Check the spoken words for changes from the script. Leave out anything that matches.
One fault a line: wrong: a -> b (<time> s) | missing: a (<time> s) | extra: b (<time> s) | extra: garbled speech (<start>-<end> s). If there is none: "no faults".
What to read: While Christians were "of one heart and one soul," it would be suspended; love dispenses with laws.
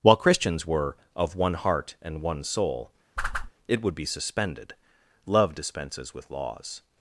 no faults